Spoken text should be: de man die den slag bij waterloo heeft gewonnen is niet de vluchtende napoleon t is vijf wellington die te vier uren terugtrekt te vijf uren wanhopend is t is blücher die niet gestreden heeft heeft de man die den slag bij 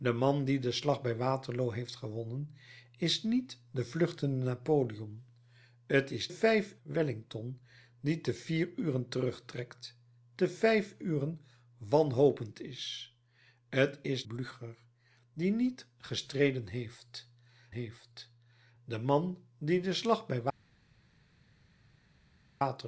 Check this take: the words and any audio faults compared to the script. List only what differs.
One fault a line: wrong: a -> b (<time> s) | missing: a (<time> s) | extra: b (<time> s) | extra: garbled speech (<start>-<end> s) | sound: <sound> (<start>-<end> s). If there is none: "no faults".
no faults